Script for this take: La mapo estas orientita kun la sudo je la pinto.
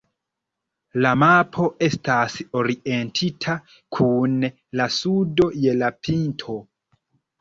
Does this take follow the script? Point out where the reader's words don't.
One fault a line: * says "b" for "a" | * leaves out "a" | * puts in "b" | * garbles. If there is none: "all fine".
all fine